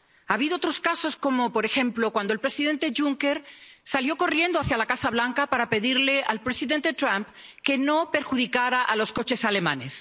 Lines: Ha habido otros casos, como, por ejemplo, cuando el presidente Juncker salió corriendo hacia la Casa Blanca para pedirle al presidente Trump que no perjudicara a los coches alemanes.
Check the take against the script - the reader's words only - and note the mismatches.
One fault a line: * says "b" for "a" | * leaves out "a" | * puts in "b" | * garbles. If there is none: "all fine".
all fine